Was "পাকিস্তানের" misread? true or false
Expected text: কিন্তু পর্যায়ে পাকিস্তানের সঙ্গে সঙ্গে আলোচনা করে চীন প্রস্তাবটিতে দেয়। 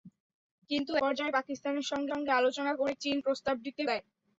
false